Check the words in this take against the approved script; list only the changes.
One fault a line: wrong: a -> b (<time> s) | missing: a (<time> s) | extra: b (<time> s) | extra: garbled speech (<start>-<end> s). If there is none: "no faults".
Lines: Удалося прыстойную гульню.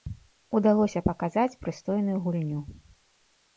extra: паказаць (1.1 s)